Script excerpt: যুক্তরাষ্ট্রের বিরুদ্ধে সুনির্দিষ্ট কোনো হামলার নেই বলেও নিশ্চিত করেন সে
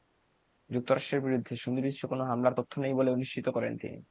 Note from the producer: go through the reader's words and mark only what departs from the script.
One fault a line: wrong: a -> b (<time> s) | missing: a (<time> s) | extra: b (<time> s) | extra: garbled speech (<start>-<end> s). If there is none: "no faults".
extra: তথ্য (2.6 s)
wrong: সে -> তিনি (3.8 s)